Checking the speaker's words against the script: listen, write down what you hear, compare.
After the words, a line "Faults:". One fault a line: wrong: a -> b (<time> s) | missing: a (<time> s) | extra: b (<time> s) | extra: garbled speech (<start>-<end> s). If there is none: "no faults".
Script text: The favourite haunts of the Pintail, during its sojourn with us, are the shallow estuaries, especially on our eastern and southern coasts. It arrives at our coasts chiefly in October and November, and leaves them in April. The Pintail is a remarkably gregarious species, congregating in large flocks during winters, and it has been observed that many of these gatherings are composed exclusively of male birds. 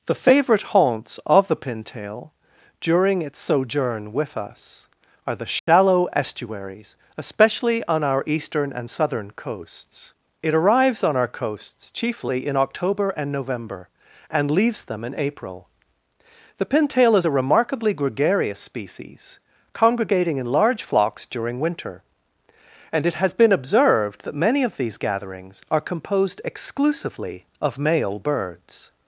The favourite haunts of the Pintail, during its sojourn with us, are the shallow estuaries, especially on our eastern and southern coasts. It arrives on our coasts chiefly in October and November, and leaves them in April. The Pintail is a remarkably gregarious species, congregating in large flocks during winter, and it has been observed that many of these gatherings are composed exclusively of male birds.
Faults:
wrong: at -> on (11.0 s)
wrong: winters -> winter (21.6 s)